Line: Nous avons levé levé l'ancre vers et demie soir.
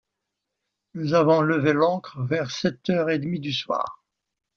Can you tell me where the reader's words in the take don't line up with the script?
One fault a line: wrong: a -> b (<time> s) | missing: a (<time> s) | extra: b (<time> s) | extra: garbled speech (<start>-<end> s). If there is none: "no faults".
missing: levé (1.7 s)
extra: sept heures (2.5 s)
extra: du (3.4 s)